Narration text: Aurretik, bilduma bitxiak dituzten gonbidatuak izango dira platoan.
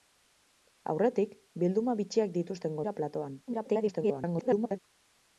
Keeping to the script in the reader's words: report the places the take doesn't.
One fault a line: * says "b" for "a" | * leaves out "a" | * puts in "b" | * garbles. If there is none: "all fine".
* leaves out "gonbidatuak izango"
* garbles